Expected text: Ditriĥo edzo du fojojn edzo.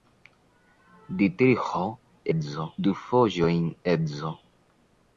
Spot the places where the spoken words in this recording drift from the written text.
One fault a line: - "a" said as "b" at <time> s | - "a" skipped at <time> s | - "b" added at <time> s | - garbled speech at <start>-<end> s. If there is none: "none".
none